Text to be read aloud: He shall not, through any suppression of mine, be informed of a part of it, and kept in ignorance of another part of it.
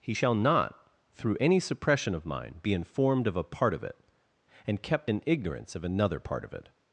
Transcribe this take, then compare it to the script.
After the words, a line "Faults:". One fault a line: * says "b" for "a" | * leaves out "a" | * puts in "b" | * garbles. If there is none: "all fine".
He shall not, through any suppression of mine, be informed of a part of it, and kept in ignorance of another part of it.
Faults:
all fine